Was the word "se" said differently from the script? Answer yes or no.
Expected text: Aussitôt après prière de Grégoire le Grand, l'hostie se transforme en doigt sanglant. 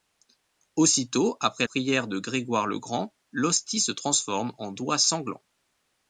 no